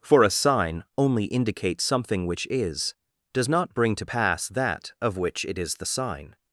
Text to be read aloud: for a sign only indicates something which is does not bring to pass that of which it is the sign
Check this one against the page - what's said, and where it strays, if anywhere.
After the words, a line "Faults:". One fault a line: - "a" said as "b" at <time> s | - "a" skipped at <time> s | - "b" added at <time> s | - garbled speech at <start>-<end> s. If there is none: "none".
for a sign only indicates something which is does not bring to pass that of which it is the sign
Faults:
none